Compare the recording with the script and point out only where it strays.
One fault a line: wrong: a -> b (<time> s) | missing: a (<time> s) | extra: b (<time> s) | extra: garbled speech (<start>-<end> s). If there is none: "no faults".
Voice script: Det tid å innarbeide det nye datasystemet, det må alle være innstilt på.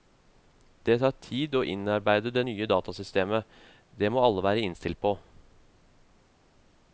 extra: tar (1.0 s)